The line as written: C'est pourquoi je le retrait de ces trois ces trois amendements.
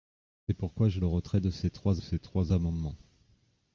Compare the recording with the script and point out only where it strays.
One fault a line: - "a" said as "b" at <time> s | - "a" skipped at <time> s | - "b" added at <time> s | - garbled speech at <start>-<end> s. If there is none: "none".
none